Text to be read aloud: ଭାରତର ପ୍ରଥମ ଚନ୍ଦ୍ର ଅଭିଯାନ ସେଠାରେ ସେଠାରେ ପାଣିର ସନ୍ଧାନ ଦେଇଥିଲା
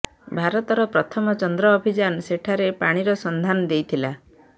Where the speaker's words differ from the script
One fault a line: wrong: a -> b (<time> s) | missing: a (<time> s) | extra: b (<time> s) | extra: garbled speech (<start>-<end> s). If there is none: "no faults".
missing: ସେଠାରେ (2.7 s)